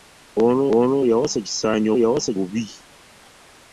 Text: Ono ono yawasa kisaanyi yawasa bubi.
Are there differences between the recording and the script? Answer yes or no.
no